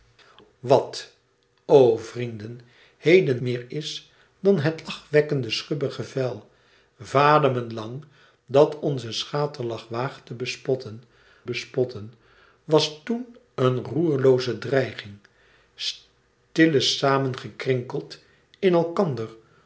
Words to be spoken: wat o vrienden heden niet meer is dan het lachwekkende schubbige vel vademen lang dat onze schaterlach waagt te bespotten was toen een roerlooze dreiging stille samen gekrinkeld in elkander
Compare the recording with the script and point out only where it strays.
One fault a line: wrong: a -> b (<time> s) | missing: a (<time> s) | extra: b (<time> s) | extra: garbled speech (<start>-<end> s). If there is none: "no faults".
missing: niet (3.4 s)
extra: bespotten (11.4 s)